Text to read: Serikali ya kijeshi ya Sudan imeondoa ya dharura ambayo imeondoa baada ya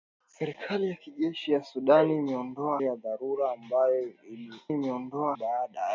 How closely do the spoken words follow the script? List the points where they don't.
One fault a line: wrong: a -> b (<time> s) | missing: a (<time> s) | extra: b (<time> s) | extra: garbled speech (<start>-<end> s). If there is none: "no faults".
no faults